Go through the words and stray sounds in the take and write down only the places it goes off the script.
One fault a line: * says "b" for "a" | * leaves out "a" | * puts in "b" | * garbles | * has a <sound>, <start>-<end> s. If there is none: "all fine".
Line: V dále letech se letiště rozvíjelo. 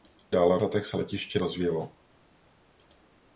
all fine